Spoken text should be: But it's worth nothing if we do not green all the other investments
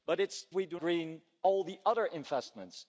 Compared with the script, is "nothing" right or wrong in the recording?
wrong